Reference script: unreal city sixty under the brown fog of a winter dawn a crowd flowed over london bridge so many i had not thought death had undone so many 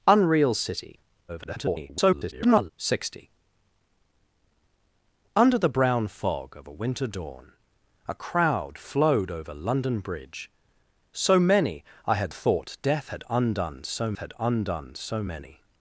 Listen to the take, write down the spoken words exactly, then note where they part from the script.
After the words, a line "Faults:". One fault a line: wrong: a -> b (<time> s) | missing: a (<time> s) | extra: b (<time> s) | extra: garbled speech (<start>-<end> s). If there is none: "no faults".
unreal city [garbled] sixty under the brown fog of a winter dawn a crowd flowed over london bridge so many i had thought death had undone so had undone so many
Faults:
extra: garbled speech (1.3-2.7 s)
missing: not (12.3 s)
extra: had undone so (14.2 s)